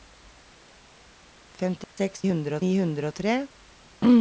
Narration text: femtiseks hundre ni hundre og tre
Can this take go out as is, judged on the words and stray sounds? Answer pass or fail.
fail